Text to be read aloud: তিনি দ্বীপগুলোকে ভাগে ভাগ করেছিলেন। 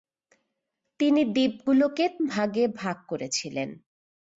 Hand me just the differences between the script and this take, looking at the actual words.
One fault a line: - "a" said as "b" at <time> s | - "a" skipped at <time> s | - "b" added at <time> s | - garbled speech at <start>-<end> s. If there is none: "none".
none